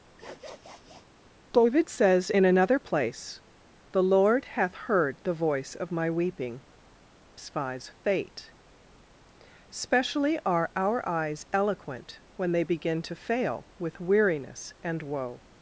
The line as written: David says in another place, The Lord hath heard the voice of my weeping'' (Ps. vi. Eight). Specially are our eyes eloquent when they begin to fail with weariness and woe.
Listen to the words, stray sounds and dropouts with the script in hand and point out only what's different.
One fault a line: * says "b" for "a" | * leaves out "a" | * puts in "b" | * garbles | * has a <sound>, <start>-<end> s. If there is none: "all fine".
* has a sniff, 0.2-1.1 s
* says "Spies fate" for "Ps vi Eight"